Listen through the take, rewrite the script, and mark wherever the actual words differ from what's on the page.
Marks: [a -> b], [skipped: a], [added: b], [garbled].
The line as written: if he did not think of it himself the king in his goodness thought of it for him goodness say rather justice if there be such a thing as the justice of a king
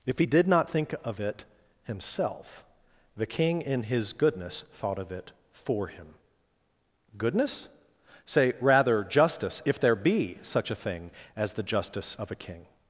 if he did not think of it himself the king in his goodness thought of it for him goodness say rather justice if there be such a thing as the justice of a king